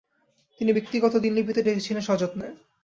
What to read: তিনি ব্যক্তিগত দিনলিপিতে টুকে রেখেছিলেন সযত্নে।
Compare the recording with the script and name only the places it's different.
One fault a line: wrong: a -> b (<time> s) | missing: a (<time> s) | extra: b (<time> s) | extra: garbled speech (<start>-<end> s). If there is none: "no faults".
missing: টুকে (1.6 s)